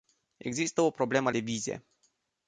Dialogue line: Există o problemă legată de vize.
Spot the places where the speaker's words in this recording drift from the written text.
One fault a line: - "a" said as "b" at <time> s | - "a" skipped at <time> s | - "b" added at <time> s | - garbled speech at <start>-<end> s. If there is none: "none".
- "legată" skipped at 1.3 s